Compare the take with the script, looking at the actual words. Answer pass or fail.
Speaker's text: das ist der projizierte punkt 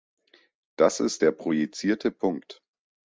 pass